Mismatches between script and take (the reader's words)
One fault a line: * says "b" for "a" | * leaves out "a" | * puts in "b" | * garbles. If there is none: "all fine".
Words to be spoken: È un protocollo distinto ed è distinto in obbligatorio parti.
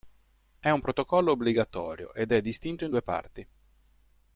* says "obbligatorio" for "distinto"
* says "due" for "obbligatorio"